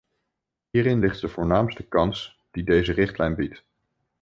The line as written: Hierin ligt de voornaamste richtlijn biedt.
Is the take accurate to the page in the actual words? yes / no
no